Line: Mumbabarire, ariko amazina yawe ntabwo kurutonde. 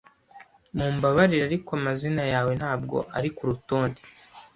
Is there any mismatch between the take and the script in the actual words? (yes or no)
yes